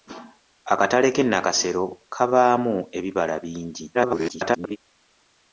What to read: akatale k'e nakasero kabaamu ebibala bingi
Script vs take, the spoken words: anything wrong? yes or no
yes